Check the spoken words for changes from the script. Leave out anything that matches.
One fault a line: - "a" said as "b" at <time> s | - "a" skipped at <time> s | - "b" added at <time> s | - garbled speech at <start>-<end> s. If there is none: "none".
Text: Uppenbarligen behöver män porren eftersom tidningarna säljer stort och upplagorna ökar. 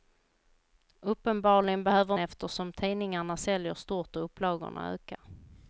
- "män porren" skipped at 2.2 s